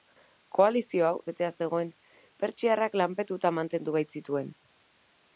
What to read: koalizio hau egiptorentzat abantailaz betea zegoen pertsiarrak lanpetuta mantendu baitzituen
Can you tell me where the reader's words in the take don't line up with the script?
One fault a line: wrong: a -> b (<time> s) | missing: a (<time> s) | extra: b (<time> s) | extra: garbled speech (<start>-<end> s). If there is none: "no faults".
missing: egiptorentzat abantailaz (1.2 s)